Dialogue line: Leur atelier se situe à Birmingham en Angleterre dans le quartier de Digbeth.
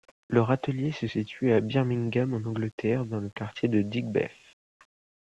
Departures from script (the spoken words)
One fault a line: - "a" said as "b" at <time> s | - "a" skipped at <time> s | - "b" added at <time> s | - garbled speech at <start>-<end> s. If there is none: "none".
none